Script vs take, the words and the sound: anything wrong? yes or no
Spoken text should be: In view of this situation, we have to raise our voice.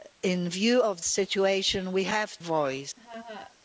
yes